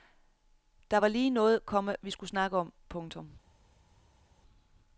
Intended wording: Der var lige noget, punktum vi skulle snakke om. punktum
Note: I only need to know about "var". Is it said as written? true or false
true